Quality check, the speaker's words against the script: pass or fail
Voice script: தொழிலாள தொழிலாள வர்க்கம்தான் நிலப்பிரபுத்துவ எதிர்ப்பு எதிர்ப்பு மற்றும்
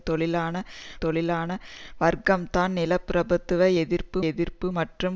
pass